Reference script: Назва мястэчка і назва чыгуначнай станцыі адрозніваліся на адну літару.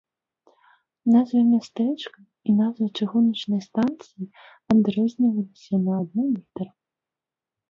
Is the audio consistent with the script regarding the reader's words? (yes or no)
yes